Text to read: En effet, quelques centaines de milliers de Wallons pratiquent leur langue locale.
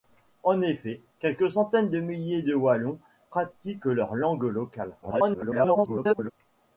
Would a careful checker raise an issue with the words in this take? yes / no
yes